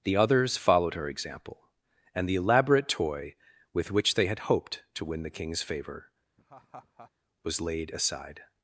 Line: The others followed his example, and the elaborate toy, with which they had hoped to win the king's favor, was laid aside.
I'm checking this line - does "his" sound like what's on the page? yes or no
no